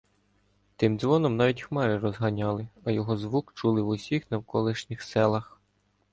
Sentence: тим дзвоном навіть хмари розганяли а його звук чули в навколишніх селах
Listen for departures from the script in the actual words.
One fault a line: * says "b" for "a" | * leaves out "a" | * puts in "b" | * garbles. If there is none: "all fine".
* puts in "усіх"